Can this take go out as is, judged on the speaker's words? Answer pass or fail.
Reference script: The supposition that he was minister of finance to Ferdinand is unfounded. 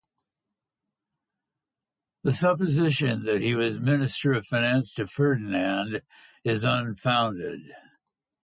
pass